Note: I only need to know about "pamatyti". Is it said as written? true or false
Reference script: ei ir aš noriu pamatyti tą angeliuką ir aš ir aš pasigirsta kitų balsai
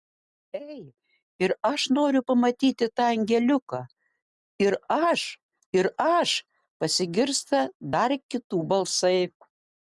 true